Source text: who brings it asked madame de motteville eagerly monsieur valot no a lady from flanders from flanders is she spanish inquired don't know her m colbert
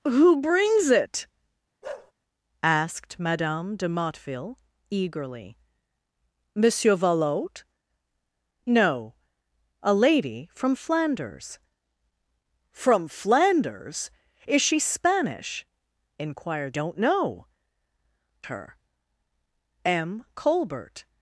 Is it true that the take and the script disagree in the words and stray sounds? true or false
true